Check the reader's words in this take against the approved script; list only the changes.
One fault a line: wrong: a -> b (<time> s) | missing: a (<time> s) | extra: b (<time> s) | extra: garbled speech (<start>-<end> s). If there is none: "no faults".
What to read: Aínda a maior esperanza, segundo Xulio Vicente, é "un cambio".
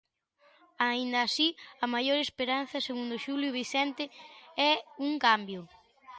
extra: así (1.3 s)